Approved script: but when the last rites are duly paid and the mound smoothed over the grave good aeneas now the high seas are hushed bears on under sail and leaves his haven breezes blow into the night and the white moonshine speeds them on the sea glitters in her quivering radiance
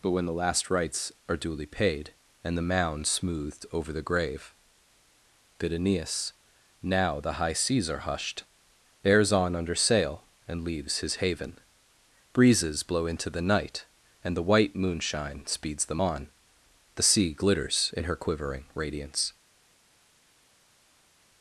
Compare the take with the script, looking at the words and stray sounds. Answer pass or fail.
fail